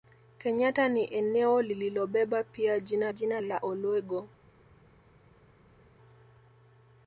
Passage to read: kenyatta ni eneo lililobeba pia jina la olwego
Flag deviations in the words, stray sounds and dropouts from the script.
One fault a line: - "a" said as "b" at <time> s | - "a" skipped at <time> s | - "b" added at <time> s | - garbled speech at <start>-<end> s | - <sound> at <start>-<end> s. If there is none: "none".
- "jina" added at 3.1 s